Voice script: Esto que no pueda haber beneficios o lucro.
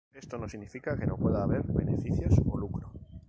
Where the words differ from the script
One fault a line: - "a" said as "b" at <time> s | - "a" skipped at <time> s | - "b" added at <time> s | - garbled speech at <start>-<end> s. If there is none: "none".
- "no significa" added at 0.4 s